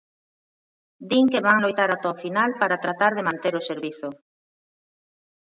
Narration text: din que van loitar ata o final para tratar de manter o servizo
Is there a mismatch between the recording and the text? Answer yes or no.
no